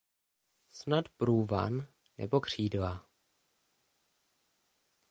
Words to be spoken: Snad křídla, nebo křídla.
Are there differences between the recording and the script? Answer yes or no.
yes